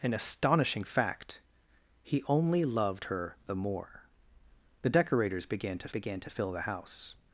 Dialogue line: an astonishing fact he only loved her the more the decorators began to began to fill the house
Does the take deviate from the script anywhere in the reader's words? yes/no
no